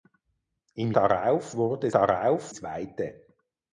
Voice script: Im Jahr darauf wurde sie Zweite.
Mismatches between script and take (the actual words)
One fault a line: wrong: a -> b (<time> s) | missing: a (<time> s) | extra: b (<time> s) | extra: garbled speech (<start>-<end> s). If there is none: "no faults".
missing: Jahr (0.9 s)
wrong: sie -> darauf (1.9 s)